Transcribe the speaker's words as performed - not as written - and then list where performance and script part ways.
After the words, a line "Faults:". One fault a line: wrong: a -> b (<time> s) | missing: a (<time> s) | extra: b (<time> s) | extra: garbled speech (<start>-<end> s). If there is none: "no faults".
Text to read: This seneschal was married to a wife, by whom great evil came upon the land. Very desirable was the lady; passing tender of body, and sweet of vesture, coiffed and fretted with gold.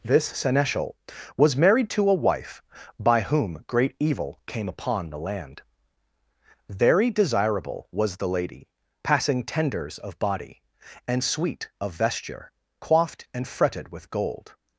This seneschal was married to a wife, by whom great evil came upon the land. Very desirable was the lady; passing tenders of body, and sweet of vesture, coiffed and fretted with gold.
Faults:
wrong: tender -> tenders (9.4 s)